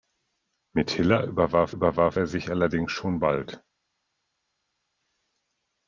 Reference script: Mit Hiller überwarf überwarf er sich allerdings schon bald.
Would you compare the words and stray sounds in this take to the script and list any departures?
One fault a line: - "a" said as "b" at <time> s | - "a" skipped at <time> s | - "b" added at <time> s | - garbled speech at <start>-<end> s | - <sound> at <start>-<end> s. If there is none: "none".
none